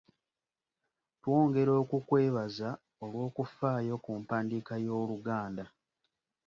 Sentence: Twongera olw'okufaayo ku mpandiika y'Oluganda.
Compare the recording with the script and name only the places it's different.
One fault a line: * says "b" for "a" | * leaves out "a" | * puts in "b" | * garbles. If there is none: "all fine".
* puts in "okukwebaza"